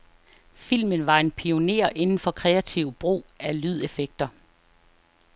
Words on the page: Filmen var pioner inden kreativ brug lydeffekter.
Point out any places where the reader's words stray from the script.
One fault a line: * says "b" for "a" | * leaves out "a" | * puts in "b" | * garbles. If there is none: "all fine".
* puts in "en"
* puts in "for"
* puts in "af"